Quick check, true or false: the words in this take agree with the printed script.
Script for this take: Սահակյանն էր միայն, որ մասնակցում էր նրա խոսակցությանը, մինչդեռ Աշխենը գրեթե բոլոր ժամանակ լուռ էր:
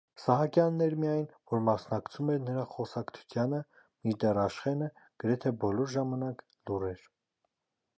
true